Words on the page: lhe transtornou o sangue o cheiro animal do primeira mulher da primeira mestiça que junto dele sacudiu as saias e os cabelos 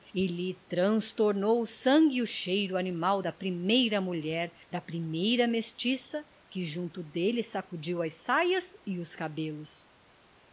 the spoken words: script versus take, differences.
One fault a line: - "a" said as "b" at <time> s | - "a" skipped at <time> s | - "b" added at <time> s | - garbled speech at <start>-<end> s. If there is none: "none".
- "do" said as "da" at 3.2 s